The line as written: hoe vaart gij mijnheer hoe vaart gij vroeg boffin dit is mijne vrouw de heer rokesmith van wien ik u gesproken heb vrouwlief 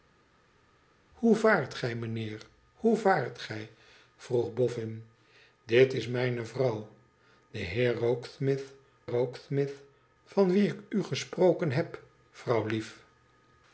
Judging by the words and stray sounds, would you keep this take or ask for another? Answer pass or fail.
fail